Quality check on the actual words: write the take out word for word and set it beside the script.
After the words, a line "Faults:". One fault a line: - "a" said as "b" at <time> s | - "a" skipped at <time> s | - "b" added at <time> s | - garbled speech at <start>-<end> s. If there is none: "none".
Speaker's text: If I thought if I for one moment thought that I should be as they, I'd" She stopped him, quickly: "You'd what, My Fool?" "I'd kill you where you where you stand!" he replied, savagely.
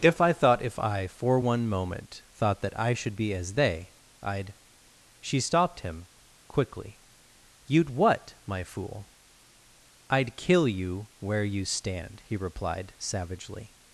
If I thought if I for one moment thought that I should be as they, I'd" She stopped him, quickly: "You'd what, My Fool?" "I'd kill you where you stand!" he replied, savagely.
Faults:
- "where you" skipped at 11.7 s